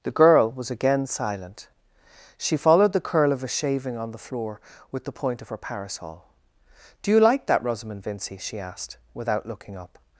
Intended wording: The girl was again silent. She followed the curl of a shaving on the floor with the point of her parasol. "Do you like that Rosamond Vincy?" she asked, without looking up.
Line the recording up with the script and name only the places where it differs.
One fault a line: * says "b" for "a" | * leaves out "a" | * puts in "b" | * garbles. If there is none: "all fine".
all fine